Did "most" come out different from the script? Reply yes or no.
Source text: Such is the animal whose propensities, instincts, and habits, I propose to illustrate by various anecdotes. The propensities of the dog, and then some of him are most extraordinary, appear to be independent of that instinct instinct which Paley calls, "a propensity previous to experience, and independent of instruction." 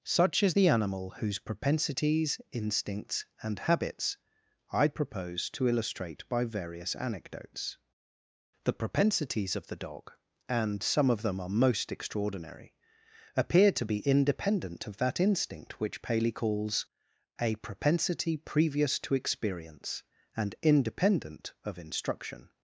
no